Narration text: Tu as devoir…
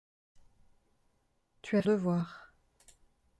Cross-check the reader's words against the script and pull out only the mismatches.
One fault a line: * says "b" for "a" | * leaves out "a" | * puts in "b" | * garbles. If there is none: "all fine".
all fine